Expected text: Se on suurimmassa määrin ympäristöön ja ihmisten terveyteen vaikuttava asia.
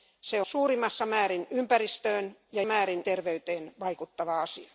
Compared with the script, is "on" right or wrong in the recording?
wrong